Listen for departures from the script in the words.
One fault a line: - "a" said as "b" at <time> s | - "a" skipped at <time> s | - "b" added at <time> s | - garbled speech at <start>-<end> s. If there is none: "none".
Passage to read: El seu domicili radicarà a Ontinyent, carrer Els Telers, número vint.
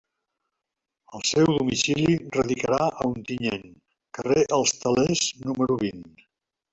none